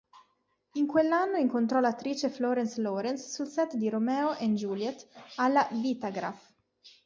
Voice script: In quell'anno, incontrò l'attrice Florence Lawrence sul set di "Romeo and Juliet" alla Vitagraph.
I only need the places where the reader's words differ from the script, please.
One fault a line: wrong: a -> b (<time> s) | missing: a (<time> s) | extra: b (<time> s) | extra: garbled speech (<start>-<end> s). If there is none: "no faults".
no faults